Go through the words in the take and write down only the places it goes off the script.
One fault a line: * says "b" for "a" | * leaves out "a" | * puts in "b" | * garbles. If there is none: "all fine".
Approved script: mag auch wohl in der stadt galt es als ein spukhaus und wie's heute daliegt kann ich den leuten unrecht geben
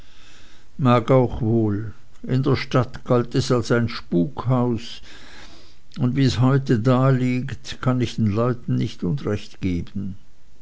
* puts in "nicht"